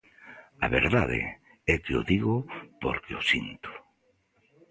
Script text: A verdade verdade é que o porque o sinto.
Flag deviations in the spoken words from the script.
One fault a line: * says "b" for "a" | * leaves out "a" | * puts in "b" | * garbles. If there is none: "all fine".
* leaves out "verdade"
* puts in "digo"